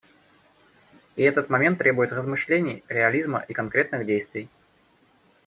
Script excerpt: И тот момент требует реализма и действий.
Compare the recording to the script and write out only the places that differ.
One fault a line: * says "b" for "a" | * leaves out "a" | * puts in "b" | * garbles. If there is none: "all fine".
* says "этот" for "тот"
* puts in "размышлений"
* puts in "конкретных"